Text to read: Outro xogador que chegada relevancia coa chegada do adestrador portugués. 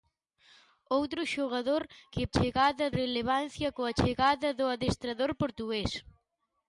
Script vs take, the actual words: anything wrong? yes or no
no